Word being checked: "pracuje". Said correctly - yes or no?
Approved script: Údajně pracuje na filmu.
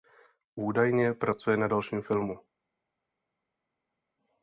yes